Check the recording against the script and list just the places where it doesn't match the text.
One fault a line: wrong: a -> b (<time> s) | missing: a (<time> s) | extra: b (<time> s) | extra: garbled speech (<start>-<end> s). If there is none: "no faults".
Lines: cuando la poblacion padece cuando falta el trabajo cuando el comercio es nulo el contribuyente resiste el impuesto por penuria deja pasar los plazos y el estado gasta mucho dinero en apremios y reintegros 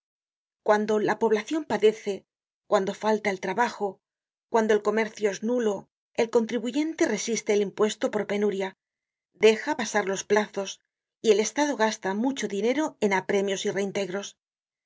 no faults